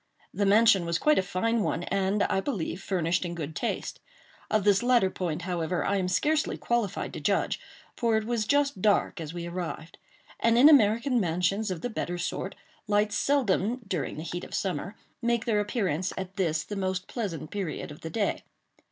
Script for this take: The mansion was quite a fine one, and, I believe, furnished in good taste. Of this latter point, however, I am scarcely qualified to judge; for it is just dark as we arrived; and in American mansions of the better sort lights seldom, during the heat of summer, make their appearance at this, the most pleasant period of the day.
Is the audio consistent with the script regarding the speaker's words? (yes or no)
no